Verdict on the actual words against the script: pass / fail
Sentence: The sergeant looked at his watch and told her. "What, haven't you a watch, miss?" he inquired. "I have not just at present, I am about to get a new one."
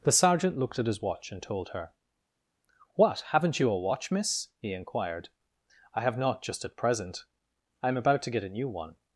pass